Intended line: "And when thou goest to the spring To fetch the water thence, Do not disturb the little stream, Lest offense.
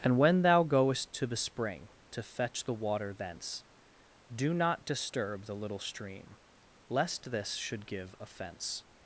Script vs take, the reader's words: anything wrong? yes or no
yes